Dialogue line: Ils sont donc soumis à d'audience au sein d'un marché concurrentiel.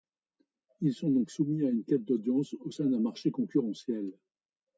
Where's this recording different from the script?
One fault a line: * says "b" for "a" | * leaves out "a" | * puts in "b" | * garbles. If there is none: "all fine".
* puts in "une quête"